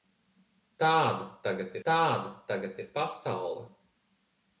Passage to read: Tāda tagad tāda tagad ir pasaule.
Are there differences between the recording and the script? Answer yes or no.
no